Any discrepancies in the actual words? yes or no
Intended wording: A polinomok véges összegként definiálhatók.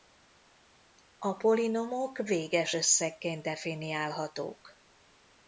no